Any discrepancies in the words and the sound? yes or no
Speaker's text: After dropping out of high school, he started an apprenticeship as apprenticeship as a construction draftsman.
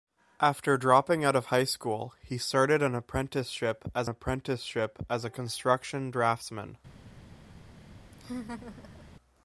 yes